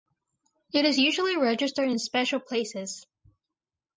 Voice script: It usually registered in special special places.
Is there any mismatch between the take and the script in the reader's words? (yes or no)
yes